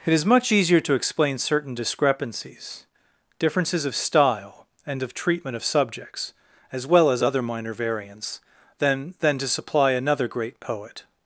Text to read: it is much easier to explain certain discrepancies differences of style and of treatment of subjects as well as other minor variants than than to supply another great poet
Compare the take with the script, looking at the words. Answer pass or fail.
pass